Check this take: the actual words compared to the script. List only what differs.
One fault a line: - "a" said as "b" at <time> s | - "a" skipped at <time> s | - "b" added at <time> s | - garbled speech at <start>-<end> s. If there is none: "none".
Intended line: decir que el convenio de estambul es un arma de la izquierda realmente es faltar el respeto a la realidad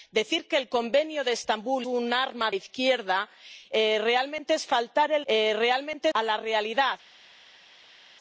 - "es" skipped at 1.9 s
- "de la" skipped at 2.5 s
- "respeto" said as "realmente" at 5.3 s